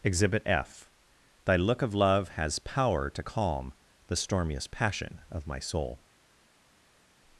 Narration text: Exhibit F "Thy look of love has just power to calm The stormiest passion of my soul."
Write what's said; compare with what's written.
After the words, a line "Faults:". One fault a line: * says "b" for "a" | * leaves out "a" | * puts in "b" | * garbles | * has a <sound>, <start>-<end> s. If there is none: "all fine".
Exhibit F "Thy look of love has power to calm The stormiest passion of my soul."
Faults:
* leaves out "just"